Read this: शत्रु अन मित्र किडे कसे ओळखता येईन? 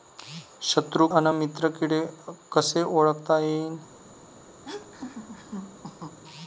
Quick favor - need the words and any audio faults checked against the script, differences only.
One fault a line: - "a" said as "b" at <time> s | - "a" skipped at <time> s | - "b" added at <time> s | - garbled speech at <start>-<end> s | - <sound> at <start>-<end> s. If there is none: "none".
- laugh at 4.6-6.2 s